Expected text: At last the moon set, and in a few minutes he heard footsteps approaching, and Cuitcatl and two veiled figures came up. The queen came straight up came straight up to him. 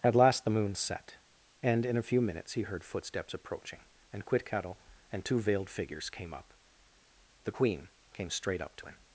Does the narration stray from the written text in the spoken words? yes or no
yes